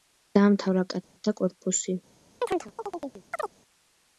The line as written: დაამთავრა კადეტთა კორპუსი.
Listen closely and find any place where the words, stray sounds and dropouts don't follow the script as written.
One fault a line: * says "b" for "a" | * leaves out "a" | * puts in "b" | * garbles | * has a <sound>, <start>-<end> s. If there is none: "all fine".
* has a dropout, 1.0-1.2 s
* has a chirp, 2.4-3.5 s